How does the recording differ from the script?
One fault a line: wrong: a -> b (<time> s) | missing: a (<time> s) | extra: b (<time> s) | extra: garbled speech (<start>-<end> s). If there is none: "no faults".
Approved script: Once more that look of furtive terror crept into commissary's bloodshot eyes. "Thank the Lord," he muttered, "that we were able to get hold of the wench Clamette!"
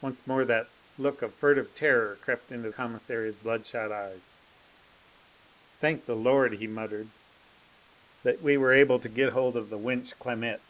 no faults